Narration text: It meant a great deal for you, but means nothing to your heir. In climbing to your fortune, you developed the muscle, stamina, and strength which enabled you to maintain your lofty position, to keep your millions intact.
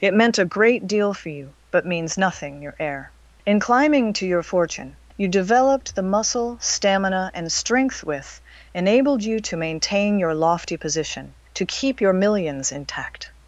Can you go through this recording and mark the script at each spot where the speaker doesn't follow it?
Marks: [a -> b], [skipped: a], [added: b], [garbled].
It meant a great deal for you, but means nothing [skipped: to] your heir. In climbing to your fortune, you developed the muscle, stamina, and strength [which -> with] enabled you to maintain your lofty position, to keep your millions intact.